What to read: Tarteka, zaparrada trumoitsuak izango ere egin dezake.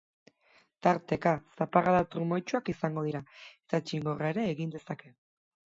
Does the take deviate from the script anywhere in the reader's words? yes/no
yes